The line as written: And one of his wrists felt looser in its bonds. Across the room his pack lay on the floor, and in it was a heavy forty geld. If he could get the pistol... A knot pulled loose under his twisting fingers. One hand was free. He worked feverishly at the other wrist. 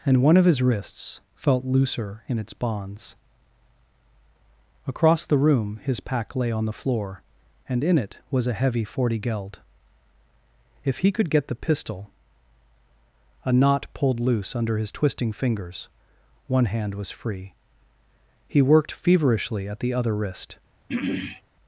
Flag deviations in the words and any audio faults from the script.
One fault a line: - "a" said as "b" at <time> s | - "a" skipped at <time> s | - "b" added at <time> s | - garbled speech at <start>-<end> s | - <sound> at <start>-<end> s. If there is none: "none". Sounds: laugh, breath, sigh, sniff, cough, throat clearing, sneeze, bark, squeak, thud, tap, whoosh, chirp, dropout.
- throat clearing at 20.9-21.4 s